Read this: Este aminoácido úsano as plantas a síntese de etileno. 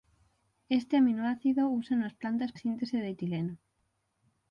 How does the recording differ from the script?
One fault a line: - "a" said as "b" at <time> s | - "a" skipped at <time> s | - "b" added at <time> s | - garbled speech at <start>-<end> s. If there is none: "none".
none